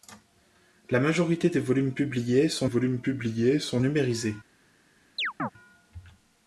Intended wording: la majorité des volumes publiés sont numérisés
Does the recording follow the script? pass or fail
fail